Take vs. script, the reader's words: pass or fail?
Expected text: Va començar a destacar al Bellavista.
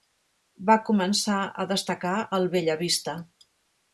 pass